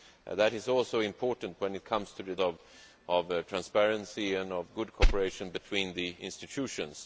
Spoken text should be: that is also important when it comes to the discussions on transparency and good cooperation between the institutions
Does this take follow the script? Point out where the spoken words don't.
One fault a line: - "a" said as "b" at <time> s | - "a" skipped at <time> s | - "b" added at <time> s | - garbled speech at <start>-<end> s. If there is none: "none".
- "discussions" skipped at 2.4 s